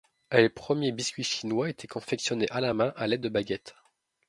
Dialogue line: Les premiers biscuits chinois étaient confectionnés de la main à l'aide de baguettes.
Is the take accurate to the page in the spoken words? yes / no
no